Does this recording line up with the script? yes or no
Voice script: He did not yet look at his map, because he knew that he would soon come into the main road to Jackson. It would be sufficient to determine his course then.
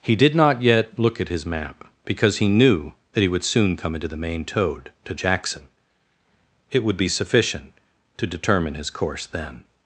no